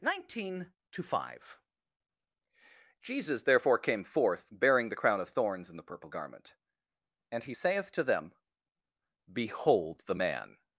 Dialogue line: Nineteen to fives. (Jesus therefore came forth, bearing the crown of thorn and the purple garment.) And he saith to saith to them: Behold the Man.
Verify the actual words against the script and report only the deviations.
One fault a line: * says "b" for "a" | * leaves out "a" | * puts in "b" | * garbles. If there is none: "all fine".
* says "five" for "fives"
* says "thorns" for "thorn"
* leaves out "saith to"